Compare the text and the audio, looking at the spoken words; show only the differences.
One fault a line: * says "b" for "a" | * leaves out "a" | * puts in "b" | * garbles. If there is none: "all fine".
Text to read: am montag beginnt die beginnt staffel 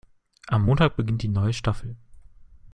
* says "neue" for "beginnt"